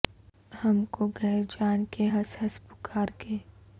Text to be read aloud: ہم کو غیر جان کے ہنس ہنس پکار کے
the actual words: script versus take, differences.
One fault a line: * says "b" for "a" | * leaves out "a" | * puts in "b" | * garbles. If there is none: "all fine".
all fine